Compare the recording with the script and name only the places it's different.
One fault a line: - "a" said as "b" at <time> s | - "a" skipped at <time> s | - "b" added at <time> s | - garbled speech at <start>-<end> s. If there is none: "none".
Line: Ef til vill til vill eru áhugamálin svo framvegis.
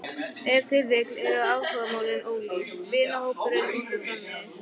- "til vill eru áhugamálin" said as "eru áhugamálin ólík vinahópurinn og" at 1.3 s